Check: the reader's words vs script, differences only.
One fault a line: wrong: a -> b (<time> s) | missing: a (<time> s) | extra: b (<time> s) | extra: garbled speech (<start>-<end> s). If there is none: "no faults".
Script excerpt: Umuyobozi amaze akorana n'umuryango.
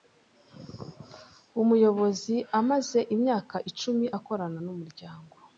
extra: imyaka icumi (3.1 s)